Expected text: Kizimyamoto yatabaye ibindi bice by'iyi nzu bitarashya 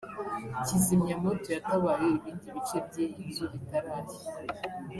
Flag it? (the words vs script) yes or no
no